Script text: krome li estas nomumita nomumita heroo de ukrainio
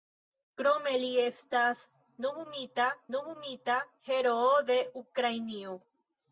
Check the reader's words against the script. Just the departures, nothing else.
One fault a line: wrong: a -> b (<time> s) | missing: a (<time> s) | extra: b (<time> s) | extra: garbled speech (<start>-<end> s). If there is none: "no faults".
no faults